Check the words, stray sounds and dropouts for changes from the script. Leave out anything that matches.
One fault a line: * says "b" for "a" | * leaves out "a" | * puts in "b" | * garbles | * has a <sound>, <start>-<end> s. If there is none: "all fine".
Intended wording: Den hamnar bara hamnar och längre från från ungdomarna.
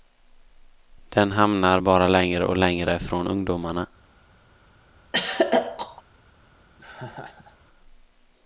* says "längre" for "hamnar"
* leaves out "från"
* has a throat clearing, 5.1-6.0 s
* has a laugh, 6.8-7.6 s